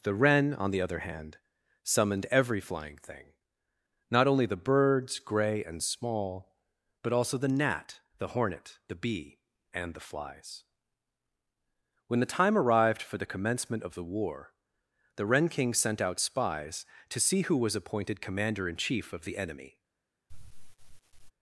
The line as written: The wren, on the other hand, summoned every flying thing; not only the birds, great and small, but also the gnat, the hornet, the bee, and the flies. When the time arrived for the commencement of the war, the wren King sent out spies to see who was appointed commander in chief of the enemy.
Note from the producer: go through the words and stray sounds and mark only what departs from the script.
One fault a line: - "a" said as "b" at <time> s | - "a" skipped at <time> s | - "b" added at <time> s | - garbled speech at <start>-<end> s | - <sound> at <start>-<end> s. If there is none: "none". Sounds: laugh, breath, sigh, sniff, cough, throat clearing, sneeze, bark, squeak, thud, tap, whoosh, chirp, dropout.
- "great" said as "grey" at 5.2 s
- sigh at 20.3-21.3 s